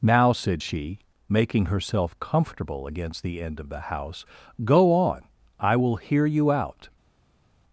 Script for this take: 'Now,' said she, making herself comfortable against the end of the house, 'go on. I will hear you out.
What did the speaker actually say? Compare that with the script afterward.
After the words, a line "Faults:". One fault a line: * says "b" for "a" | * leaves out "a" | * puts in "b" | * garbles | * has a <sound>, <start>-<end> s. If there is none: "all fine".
'Now,' said she, making herself comfortable against the end of the house, 'go on. I will hear you out.
Faults:
all fine